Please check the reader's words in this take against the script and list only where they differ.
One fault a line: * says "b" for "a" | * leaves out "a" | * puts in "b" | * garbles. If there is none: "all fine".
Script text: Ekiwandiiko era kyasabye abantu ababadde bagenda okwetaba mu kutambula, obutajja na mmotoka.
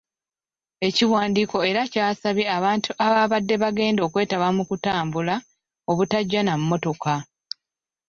all fine